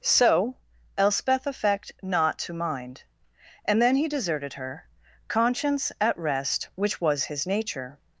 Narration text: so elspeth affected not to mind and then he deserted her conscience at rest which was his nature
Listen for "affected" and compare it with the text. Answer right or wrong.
wrong